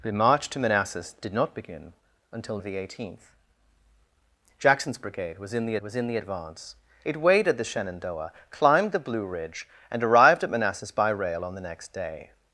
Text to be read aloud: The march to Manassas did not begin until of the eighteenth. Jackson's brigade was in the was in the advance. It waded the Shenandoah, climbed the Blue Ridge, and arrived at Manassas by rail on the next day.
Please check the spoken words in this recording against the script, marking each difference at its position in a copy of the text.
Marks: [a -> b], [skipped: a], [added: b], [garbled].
The march to Manassas did not begin until of the eighteenth. Jackson's brigade was in the was in the advance. It waded the Shenandoah, climbed the Blue Ridge, and arrived at Manassas by rail on the next day.